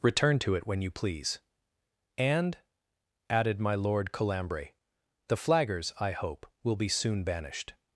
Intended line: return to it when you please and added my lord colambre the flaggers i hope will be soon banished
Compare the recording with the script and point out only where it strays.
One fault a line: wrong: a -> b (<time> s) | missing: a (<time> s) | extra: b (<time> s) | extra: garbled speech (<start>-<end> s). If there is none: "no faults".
no faults